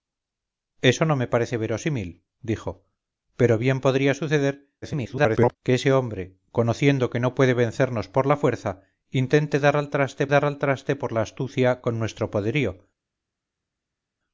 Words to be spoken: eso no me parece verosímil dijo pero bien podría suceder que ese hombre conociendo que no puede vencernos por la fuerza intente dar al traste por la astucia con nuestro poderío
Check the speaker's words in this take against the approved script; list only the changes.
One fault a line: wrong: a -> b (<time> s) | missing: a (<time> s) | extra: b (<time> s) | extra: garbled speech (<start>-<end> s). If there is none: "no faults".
extra: garbled speech (4.8-5.6 s)
extra: dar al traste (10.3 s)